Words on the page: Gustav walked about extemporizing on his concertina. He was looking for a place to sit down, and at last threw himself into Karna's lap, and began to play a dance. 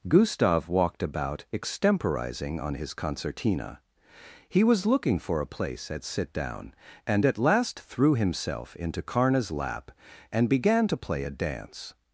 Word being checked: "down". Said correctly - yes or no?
yes